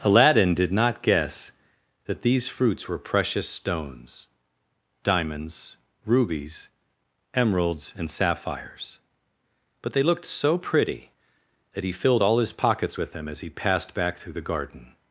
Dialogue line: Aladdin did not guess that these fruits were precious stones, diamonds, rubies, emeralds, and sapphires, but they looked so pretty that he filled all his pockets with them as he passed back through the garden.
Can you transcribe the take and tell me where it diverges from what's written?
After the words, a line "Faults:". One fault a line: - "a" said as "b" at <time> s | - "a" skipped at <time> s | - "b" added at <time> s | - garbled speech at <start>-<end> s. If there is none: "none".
Aladdin did not guess that these fruits were precious stones, diamonds, rubies, emeralds, and sapphires, but they looked so pretty that he filled all his pockets with them as he passed back through the garden.
Faults:
none